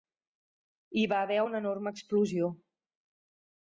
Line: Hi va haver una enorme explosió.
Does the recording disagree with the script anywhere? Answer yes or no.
no